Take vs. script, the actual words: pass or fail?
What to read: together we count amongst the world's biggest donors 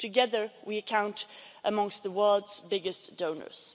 pass